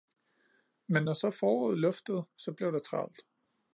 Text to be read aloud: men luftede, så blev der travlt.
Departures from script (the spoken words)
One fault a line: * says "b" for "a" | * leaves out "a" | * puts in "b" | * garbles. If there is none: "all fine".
* puts in "når så foråret"